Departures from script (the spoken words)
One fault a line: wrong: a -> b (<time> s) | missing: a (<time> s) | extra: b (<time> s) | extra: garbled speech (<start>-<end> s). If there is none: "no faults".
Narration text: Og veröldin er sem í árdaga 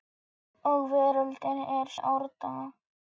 missing: sem (1.9 s)